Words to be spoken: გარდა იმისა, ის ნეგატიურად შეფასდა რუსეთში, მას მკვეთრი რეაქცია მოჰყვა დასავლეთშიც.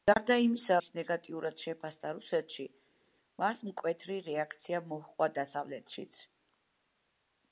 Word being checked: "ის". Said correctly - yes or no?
yes